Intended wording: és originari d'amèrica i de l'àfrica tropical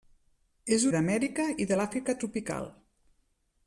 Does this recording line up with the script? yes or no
no